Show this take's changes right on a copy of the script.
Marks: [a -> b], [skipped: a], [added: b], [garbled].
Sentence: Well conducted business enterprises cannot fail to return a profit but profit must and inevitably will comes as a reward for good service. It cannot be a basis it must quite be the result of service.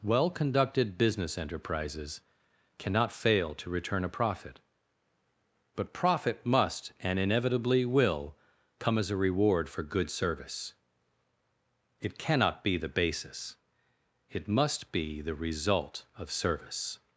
Well conducted business enterprises cannot fail to return a profit but profit must and inevitably will [comes -> come] as a reward for good service. It cannot be [a -> the] basis it must [skipped: quite] be the result of service.